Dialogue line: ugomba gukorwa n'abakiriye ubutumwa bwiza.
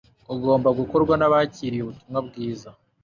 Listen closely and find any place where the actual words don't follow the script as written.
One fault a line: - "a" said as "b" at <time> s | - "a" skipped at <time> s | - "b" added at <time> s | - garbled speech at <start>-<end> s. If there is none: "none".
none